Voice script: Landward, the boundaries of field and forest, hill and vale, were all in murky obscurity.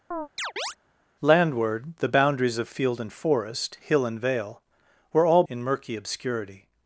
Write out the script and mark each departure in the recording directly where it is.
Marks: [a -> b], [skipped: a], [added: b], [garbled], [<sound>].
[chirp] Landward, the boundaries of field and forest, hill and vale, were all in murky obscurity.